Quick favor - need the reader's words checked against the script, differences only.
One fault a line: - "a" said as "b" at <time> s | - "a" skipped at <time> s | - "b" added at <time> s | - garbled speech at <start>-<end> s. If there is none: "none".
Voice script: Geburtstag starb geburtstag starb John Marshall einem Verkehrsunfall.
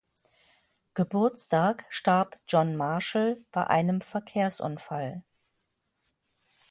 - "geburtstag starb" skipped at 2.4 s
- "bei" added at 3.5 s